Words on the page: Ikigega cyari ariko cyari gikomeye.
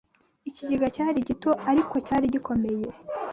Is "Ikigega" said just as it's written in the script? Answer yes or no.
yes